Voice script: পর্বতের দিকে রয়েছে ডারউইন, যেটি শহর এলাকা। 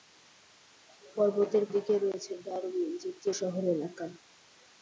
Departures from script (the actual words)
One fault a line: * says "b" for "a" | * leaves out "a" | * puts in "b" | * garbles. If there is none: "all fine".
all fine